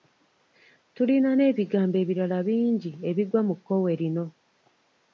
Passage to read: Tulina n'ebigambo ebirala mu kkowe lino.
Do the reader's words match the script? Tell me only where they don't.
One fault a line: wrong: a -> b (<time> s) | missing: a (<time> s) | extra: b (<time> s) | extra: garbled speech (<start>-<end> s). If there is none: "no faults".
extra: bingi ebigwa (2.5 s)